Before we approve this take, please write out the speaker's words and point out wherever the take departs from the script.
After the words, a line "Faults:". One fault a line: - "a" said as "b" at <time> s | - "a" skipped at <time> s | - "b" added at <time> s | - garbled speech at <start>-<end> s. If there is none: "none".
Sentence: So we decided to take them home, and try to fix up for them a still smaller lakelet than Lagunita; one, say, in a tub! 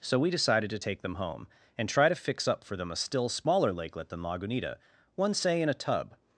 So we decided to take them home, and try to fix up for them a still smaller lakelet than Lagunita; one, say, in a tub!
Faults:
none